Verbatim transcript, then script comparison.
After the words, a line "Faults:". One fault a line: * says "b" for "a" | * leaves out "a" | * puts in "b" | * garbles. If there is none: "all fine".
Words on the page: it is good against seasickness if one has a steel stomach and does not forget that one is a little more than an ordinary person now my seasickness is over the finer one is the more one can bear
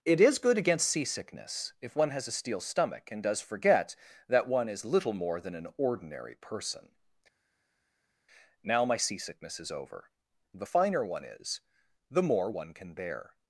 it is good against seasickness if one has a steel stomach and does forget that one is little more than an ordinary person now my seasickness is over the finer one is the more one can bear
Faults:
* leaves out "not"
* leaves out "a"